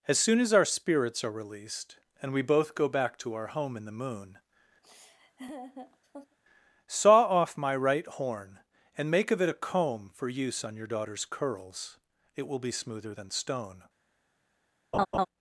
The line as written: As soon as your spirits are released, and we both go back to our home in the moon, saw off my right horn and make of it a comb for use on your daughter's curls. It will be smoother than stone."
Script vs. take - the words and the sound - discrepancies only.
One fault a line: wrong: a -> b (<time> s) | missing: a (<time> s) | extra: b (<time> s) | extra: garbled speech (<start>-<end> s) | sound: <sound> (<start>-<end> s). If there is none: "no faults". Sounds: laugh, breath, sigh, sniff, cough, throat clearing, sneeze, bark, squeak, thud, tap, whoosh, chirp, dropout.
wrong: your -> our (0.5 s)
sound: laugh (4.8-6.4 s)
sound: laugh (14.9-15.3 s)